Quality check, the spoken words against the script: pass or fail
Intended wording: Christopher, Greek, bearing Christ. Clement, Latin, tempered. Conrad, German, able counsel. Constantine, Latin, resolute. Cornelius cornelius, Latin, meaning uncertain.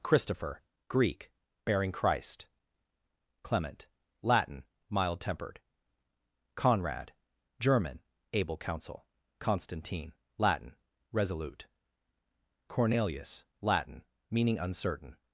fail